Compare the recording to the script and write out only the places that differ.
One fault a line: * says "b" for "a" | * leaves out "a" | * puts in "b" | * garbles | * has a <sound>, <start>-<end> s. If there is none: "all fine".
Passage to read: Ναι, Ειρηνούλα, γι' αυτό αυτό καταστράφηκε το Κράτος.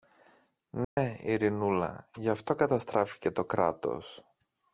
* has a dropout, 0.8-1.0 s
* leaves out "αυτό"